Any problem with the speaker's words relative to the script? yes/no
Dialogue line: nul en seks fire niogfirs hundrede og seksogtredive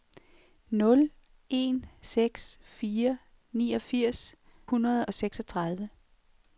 no